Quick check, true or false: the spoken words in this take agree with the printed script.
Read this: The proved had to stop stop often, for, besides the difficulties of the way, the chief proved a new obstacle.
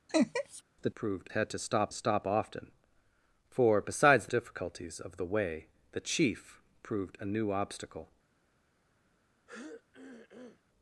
true